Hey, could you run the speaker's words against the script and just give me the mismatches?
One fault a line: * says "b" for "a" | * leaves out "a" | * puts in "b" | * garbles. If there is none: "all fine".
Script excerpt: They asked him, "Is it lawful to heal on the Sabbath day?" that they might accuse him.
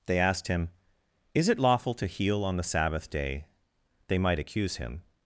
* leaves out "that"